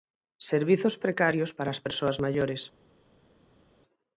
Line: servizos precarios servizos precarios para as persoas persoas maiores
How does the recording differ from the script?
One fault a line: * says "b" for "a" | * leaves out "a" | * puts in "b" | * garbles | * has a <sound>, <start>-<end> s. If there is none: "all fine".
* leaves out "servizos precarios"
* leaves out "persoas"